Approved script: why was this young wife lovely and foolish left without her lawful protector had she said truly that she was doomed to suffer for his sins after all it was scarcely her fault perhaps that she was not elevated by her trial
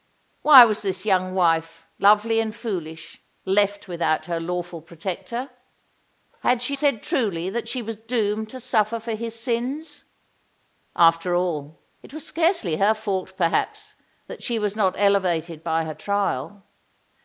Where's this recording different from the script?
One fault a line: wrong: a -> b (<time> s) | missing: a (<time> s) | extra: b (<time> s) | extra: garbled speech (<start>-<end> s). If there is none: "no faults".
no faults